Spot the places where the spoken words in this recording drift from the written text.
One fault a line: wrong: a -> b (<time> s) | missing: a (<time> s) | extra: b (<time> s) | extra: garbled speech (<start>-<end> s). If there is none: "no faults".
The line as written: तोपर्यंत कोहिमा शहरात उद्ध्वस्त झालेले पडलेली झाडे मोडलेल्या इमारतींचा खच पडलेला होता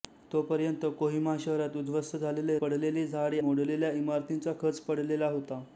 no faults